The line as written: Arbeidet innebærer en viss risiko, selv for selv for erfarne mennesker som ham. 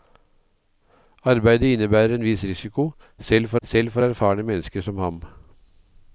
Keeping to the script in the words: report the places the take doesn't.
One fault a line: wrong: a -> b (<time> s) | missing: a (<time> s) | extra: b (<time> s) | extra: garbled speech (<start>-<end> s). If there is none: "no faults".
no faults